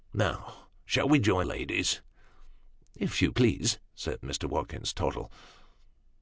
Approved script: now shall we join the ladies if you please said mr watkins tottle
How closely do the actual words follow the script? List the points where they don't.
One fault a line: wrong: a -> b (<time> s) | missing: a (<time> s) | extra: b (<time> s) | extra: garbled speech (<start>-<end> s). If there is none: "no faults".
missing: the (1.4 s)